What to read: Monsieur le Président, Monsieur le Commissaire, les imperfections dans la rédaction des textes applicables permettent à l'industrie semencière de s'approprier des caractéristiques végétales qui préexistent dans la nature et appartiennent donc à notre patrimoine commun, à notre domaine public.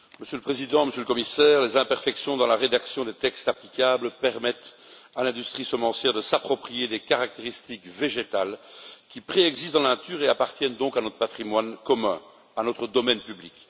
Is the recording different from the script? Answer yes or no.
no